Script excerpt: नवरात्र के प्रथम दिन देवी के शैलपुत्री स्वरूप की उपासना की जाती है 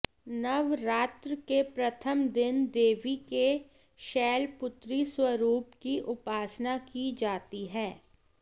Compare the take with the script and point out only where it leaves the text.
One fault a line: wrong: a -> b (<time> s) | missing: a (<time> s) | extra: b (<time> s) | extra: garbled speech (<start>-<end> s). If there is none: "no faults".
no faults